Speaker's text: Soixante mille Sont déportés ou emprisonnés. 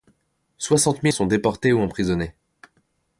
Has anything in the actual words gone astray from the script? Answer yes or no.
no